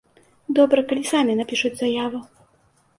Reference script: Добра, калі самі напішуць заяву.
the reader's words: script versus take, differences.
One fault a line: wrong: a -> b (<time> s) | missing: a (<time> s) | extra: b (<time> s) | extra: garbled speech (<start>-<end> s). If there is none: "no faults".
no faults